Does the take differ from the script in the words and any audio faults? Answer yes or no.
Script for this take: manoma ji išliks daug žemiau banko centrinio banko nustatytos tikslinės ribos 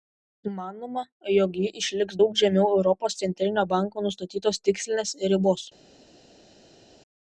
yes